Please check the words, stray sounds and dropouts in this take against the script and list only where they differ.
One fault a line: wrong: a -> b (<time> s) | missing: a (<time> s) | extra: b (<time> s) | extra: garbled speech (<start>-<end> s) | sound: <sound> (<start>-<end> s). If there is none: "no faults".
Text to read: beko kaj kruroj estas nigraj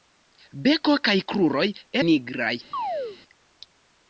missing: estas (1.6 s)
sound: chirp (2.7-3.2 s)